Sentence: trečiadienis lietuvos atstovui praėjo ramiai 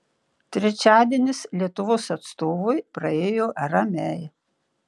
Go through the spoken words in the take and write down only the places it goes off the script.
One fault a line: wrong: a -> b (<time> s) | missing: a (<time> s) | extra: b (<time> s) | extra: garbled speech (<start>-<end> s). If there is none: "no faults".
no faults